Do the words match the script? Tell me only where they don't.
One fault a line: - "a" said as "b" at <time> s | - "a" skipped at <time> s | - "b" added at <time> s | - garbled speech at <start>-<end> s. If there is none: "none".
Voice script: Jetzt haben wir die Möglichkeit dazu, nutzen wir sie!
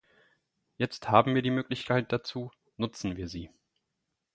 none